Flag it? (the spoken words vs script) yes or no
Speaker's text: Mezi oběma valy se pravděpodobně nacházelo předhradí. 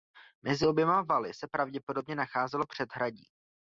no